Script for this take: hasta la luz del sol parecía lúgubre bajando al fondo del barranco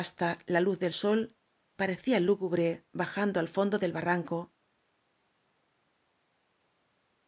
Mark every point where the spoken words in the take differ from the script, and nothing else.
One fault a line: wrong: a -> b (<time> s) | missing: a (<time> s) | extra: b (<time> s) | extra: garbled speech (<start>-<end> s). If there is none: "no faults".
no faults